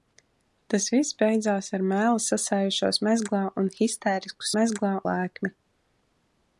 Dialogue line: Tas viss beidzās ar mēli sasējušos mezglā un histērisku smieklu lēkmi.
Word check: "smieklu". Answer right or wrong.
wrong